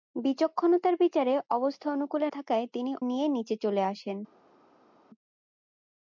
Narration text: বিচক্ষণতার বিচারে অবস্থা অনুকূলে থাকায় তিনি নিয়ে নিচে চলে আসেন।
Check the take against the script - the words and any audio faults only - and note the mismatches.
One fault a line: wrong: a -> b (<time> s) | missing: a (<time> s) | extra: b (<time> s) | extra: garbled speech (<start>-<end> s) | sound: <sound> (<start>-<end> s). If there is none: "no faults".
no faults